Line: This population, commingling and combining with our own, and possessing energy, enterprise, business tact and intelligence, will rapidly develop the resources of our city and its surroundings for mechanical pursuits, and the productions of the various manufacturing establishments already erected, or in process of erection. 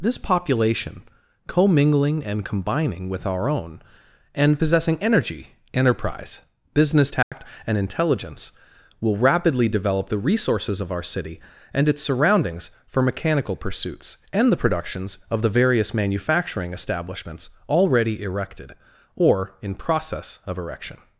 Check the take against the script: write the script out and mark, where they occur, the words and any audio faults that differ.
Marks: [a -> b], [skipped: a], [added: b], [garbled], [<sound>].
This population, commingling and combining with our own, and possessing energy, enterprise, business tact [dropout] and intelligence, will rapidly develop the resources of our city and its surroundings for mechanical pursuits, and the productions of the various manufacturing establishments already erected, or in process of erection.